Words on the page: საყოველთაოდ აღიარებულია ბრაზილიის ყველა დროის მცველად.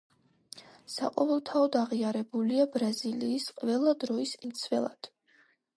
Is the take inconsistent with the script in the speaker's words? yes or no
no